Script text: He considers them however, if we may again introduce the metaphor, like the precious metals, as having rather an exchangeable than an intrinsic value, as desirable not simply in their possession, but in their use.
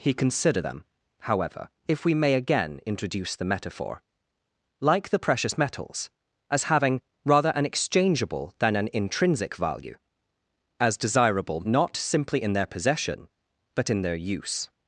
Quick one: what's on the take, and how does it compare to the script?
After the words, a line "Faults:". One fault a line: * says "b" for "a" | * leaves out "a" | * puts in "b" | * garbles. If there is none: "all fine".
He consider them however, if we may again introduce the metaphor, like the precious metals, as having rather an exchangeable than an intrinsic value, as desirable not simply in their possession, but in their use.
Faults:
* says "consider" for "considers"